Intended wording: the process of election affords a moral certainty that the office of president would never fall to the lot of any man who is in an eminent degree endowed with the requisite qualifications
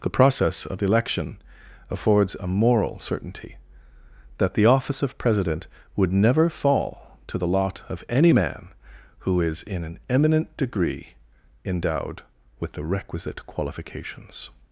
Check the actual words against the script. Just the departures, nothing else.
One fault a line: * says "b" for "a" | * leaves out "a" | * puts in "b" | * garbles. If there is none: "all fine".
all fine